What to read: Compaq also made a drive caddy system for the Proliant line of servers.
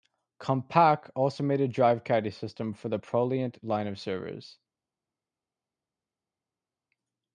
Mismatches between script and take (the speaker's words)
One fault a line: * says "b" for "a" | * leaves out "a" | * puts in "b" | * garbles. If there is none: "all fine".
all fine